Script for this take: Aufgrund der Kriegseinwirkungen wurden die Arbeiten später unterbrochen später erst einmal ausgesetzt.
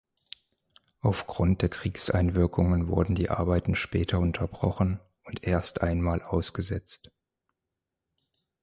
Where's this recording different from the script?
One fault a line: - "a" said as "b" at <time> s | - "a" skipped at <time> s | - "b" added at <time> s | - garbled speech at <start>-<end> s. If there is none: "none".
- "später" said as "und" at 5.2 s